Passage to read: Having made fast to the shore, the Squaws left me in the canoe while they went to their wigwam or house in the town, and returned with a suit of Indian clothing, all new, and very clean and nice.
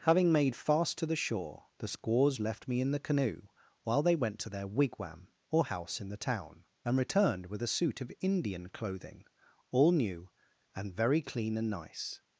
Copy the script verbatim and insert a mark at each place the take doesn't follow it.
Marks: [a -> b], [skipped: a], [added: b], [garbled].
Having made fast to the shore, the Squaws left me in the canoe while they went to their wigwam or house in the town, and returned with a suit of Indian clothing, all new, and very clean and nice.